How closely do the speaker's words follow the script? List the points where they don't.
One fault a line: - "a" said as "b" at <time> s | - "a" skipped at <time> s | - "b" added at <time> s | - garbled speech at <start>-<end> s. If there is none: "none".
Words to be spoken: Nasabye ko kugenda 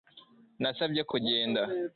none